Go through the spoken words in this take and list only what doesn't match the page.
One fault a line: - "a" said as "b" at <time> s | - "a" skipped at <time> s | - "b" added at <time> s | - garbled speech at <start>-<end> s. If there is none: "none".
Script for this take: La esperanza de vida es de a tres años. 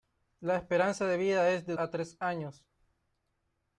none